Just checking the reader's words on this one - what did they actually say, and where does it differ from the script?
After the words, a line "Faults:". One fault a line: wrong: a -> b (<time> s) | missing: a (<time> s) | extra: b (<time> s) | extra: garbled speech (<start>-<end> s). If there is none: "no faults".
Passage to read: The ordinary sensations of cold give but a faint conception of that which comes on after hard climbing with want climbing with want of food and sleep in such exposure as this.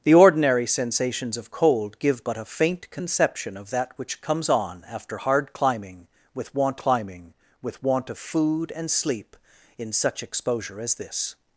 The ordinary sensations of cold give but a faint conception of that which comes on after hard climbing with want climbing with want of food and sleep in such exposure as this.
Faults:
no faults